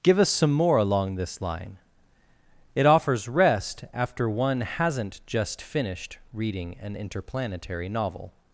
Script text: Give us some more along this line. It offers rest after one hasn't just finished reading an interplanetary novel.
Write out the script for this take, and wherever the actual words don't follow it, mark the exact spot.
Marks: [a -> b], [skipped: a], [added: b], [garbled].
Give us some more along this line. It offers rest after one hasn't just finished reading an interplanetary novel.